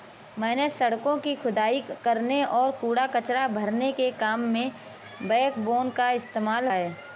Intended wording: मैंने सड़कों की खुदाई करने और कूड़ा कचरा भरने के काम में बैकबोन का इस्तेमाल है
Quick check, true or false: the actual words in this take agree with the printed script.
true